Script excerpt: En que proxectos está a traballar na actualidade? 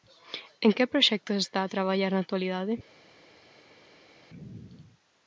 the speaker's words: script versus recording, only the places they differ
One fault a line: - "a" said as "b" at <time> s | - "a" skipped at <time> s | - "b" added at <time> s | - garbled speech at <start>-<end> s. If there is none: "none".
none